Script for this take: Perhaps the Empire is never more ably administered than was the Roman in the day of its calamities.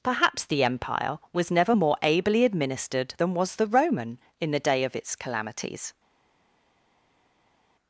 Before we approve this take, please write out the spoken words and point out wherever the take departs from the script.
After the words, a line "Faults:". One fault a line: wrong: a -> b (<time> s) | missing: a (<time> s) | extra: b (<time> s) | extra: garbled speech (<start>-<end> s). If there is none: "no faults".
Perhaps the Empire was never more ably administered than was the Roman in the day of its calamities.
Faults:
wrong: is -> was (1.3 s)